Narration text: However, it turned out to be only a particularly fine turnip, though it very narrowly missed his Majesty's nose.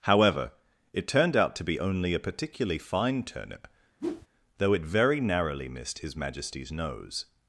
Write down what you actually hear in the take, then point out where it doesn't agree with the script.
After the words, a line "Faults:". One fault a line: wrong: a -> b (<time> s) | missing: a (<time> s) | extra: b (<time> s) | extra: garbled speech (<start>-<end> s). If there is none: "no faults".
However, it turned out to be only a particularly fine turnip, though it very narrowly missed his Majesty's nose.
Faults:
no faults